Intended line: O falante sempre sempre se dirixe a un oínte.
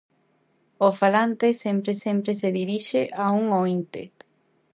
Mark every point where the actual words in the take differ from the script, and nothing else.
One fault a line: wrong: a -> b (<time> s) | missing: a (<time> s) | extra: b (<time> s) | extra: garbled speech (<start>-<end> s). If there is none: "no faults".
no faults